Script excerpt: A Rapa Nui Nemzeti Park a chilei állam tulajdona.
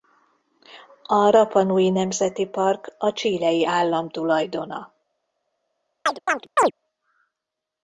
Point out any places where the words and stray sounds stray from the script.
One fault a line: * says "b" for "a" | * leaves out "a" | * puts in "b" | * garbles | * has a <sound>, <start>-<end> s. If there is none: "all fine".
* has a chirp, 6.1-6.7 s